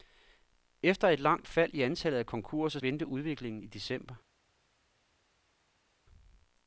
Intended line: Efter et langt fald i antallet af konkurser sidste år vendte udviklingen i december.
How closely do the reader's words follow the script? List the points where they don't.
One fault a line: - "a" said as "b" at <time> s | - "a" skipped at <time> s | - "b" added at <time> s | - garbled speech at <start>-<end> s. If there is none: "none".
- "sidste år" skipped at 2.8 s